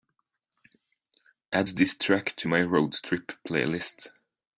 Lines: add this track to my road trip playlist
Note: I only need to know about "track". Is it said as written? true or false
true